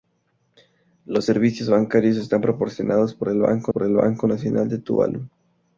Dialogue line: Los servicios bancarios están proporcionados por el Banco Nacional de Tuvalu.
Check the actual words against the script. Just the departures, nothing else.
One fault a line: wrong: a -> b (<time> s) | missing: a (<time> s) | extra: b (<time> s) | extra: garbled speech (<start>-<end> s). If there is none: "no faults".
extra: por el Banco (3.7 s)